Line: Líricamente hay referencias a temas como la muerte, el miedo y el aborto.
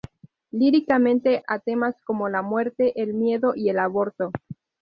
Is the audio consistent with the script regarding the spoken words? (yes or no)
no